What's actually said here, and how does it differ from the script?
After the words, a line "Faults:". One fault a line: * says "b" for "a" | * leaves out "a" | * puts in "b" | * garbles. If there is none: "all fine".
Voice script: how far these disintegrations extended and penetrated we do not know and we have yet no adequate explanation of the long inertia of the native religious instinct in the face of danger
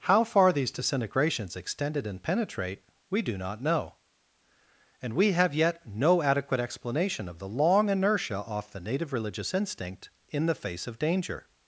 how far these disintegrations extended and penetrate we do not know and we have yet no adequate explanation of the long inertia off the native religious instinct in the face of danger
Faults:
* says "penetrate" for "penetrated"
* says "off" for "of"